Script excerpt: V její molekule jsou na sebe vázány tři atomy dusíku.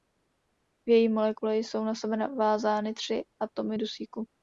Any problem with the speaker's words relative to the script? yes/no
no